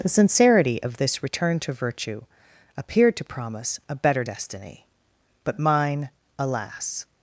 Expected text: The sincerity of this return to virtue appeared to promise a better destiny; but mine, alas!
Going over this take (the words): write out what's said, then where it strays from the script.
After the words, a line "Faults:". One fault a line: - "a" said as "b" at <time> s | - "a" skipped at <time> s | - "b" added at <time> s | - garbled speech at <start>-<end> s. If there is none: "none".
The sincerity of this return to virtue appeared to promise a better destiny; but mine, alas!
Faults:
none